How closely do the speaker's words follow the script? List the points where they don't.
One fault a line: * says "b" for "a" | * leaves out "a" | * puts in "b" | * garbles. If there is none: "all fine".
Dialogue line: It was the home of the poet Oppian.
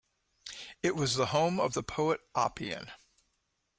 all fine